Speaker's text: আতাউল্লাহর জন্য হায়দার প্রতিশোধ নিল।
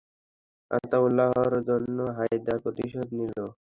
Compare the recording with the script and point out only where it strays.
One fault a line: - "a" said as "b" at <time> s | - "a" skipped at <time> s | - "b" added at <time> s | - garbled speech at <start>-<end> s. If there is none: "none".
none